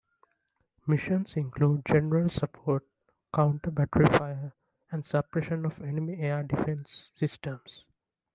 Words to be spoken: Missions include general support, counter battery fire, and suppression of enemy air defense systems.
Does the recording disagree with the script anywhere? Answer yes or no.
no